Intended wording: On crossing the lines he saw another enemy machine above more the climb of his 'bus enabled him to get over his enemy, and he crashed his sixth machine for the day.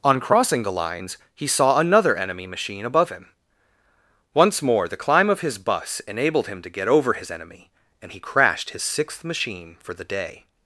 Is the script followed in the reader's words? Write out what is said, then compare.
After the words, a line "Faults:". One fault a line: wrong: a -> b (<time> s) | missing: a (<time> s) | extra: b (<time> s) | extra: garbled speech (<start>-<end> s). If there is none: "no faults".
On crossing the lines he saw another enemy machine above him. Once more the climb of his 'bus enabled him to get over his enemy, and he crashed his sixth machine for the day.
Faults:
extra: him Once (3.1 s)